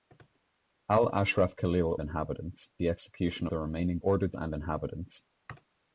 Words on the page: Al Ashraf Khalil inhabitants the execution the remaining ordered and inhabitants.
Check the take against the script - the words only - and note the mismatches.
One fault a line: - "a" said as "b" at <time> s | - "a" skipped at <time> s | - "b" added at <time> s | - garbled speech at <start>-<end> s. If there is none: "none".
none